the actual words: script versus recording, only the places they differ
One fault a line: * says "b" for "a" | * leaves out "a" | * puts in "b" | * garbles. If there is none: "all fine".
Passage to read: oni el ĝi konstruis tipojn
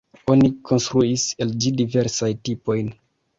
* puts in "konstruis"
* says "diversajn" for "konstruis"